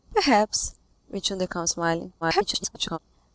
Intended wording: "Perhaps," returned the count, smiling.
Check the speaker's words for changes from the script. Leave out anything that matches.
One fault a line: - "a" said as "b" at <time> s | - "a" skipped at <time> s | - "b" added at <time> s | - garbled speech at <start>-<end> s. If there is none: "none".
- garbled speech at 2.2-3.0 s